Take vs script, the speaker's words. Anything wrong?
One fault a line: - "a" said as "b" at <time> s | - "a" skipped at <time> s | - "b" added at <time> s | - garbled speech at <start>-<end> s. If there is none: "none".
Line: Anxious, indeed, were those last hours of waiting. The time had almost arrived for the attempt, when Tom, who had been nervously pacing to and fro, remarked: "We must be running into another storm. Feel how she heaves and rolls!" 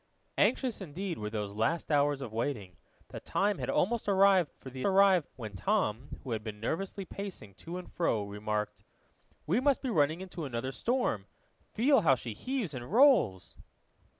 - "attempt" said as "arrived" at 4.9 s